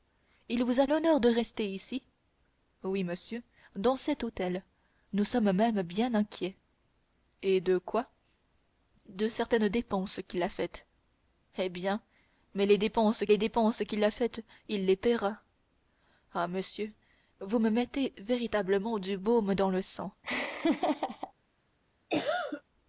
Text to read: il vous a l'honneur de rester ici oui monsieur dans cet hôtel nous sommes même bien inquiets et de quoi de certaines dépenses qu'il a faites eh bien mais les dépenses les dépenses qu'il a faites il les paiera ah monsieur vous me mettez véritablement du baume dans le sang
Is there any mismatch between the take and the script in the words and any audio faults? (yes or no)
yes